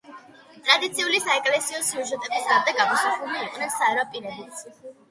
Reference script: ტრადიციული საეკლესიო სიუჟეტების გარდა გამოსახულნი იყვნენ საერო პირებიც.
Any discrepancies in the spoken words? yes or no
no